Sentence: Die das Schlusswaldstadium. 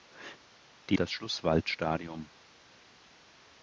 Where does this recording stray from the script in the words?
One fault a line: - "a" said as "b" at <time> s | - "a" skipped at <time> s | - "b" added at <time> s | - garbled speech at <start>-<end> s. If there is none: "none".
none